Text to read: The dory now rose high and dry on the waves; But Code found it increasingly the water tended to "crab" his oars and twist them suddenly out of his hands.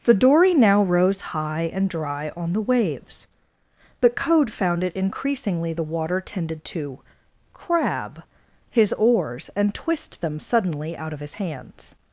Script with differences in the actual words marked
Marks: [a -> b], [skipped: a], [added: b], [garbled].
The dory now rose high and dry on the waves; But Code found it increasingly the water tended to "crab" his oars and twist them suddenly out of his hands.